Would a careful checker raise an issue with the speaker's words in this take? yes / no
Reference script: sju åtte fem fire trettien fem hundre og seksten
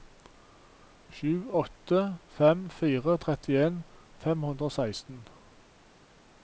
no